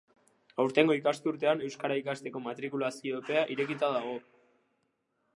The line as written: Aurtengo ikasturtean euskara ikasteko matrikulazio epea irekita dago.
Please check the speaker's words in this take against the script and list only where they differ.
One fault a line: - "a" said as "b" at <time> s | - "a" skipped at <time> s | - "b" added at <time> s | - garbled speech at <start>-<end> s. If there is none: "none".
none